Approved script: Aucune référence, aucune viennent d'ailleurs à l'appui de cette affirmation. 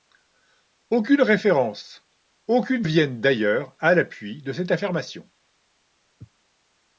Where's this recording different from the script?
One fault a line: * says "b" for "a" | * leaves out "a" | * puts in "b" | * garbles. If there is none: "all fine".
all fine